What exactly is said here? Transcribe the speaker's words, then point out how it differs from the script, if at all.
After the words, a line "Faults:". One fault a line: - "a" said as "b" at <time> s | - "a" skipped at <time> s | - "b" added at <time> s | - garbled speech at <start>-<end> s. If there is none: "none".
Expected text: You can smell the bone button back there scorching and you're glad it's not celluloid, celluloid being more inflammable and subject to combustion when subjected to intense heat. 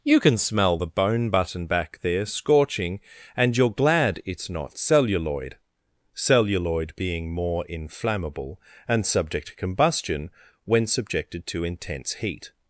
You can smell the bone button back there scorching and you're glad it's not celluloid, celluloid being more inflammable and subject to combustion when subjected to intense heat.
Faults:
none